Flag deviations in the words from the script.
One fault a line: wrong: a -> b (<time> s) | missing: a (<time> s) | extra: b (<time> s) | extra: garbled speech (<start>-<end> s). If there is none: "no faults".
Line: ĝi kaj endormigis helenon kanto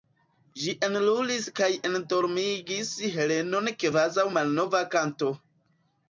extra: enlulis (0.8 s)
extra: kvazaŭ malnova (3.8 s)